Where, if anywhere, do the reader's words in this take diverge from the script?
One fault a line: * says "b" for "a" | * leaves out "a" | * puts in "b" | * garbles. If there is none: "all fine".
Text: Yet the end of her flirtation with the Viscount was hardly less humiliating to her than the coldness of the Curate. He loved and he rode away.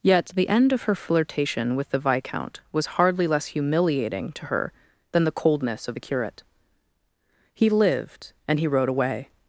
* says "lived" for "loved"